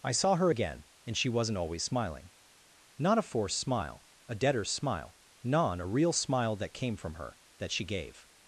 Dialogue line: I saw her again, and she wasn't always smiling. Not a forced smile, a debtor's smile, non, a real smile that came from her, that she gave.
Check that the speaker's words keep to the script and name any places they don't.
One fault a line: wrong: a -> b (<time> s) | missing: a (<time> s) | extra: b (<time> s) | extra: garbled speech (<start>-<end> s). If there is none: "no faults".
no faults